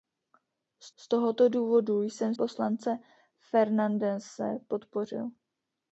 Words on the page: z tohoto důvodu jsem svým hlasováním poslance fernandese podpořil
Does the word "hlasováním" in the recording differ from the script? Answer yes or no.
yes